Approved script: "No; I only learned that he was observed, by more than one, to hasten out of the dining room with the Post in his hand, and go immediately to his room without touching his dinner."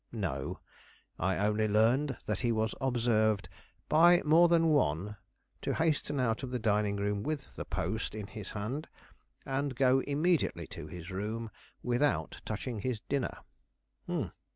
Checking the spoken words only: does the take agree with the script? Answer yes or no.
yes